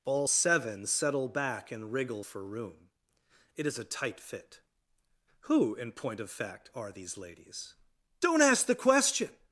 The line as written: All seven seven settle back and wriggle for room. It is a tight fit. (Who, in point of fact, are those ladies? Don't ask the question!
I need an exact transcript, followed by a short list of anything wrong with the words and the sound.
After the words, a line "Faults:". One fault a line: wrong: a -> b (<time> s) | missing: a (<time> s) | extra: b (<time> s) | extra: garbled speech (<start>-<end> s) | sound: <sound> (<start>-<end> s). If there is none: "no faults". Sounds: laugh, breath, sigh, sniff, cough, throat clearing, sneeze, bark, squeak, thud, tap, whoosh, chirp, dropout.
All seven settle back and wriggle for room. It is a tight fit. (Who, in point of fact, are these ladies? Don't ask the question!
Faults:
missing: seven (0.9 s)
wrong: those -> these (6.9 s)